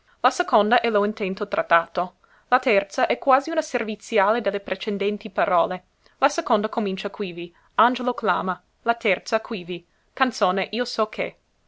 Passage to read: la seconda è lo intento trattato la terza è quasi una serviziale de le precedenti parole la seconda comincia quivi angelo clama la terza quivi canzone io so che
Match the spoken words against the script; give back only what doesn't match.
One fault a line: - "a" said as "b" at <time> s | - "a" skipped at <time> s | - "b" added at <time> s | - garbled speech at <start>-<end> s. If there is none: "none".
none